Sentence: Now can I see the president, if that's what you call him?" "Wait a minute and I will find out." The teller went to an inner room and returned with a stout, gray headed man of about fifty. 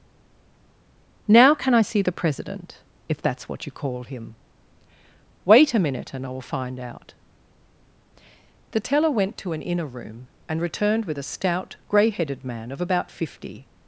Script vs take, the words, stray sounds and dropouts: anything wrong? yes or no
no